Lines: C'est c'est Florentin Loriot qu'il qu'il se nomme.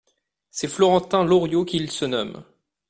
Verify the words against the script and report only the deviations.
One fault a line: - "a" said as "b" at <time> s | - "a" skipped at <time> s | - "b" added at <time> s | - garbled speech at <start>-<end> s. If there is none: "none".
- "c'est" skipped at 0.7 s
- "qu'il" skipped at 1.9 s